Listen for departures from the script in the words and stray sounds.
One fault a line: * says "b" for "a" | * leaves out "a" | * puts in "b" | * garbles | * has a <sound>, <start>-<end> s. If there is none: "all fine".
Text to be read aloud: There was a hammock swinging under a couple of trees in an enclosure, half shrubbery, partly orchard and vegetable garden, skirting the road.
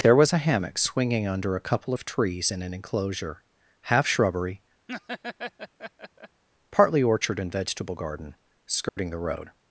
* has a laugh, 4.9-6.4 s
* has a dropout, 8.9-9.0 s